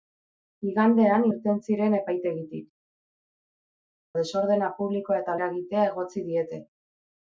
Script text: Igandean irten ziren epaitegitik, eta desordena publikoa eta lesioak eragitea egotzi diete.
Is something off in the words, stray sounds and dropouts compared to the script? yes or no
yes